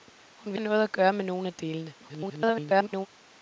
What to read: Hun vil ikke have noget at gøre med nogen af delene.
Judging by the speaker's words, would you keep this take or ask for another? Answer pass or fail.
fail